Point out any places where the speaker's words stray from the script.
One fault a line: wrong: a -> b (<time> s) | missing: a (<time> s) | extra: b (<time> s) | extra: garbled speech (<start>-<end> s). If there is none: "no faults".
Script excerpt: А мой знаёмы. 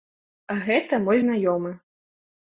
extra: гэта (0.7 s)